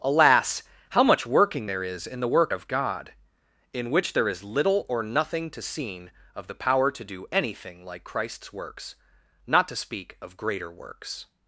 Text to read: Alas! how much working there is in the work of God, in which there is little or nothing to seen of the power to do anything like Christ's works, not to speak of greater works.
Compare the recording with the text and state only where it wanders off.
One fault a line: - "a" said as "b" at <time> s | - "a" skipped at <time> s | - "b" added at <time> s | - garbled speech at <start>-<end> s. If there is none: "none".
none